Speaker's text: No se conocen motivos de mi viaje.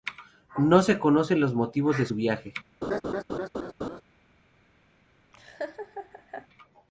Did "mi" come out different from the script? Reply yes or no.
yes